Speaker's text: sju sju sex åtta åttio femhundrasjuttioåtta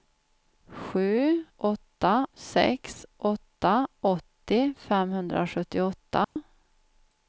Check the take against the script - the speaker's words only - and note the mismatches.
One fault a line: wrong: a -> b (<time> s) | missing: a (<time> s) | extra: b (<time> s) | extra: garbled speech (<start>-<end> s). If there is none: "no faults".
wrong: sju -> åtta (1.6 s)